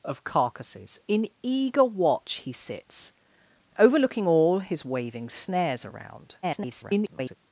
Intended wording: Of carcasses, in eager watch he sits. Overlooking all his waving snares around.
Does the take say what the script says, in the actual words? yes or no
no